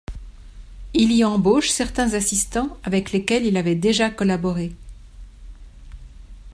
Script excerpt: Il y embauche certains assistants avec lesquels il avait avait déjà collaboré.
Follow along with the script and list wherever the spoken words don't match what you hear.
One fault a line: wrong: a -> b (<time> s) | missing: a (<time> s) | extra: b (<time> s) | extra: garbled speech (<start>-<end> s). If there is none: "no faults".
missing: avait (3.8 s)